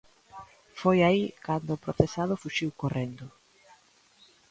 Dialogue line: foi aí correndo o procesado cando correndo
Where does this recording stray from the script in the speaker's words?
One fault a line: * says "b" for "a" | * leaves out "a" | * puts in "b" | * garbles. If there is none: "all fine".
* says "cando" for "correndo"
* says "fuxiu" for "cando"